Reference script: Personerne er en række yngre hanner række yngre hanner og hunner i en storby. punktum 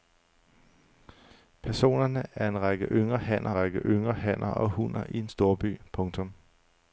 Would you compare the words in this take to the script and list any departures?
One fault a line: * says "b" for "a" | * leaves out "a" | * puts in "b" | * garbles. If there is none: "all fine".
all fine